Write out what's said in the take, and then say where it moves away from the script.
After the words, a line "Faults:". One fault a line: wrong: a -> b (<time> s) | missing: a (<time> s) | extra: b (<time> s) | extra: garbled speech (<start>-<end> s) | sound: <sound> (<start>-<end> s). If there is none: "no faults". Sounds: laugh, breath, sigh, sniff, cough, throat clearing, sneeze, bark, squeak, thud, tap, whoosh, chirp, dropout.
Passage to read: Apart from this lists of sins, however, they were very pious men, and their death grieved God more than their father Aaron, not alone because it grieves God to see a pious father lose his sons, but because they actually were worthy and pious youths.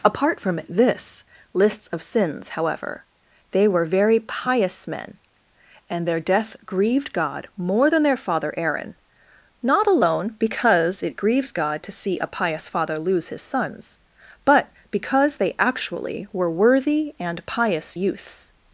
Apart from this lists of sins, however, they were very pious men, and their death grieved God more than their father Aaron, not alone because it grieves God to see a pious father lose his sons, but because they actually were worthy and pious youths.
Faults:
no faults